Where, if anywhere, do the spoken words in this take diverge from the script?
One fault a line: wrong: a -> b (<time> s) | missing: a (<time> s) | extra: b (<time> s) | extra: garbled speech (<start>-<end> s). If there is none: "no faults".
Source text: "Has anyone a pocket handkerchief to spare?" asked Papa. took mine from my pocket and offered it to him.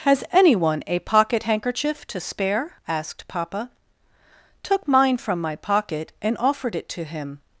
no faults